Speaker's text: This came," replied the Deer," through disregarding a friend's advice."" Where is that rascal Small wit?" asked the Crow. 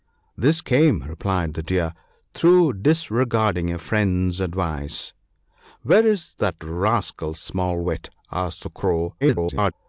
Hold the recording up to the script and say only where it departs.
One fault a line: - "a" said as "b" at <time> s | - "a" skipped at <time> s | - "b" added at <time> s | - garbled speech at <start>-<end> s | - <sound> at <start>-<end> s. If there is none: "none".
- garbled speech at 9.2-9.7 s